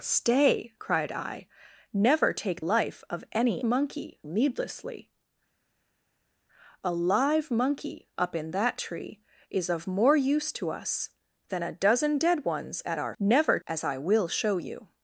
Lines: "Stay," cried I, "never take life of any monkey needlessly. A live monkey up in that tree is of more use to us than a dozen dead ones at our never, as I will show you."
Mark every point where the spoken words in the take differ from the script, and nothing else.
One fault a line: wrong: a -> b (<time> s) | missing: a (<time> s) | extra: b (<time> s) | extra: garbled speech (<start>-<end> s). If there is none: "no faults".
no faults